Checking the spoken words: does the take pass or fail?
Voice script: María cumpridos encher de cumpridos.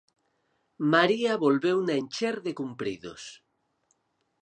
fail